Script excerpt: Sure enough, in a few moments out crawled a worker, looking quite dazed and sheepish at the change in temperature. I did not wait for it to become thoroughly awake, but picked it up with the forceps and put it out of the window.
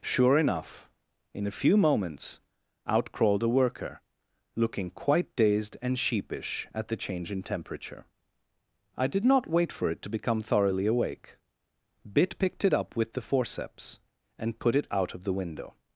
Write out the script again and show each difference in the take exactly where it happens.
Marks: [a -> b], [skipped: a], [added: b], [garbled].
Sure enough, in a few moments out crawled a worker, looking quite dazed and sheepish at the change in temperature. I did not wait for it to become thoroughly awake, [but -> bit] picked it up with the forceps and put it out of the window.